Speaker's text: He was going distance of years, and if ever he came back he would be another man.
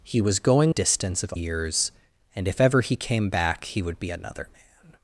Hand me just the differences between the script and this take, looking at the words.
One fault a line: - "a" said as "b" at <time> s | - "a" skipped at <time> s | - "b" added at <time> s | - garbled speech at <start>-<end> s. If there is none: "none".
none